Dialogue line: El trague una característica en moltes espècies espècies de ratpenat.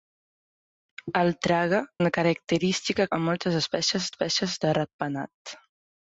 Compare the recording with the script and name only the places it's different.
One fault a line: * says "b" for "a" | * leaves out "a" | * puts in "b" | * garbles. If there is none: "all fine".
all fine